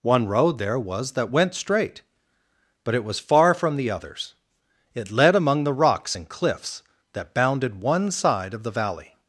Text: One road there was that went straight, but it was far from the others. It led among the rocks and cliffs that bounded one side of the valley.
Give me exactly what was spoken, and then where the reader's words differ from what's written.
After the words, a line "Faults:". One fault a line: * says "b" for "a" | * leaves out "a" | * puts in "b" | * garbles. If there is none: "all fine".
One road there was that went straight, but it was far from the others. It led among the rocks and cliffs that bounded one side of the valley.
Faults:
all fine